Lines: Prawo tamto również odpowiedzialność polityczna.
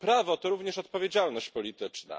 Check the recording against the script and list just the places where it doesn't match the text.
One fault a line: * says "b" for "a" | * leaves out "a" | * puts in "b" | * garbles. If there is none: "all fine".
* says "to" for "tamto"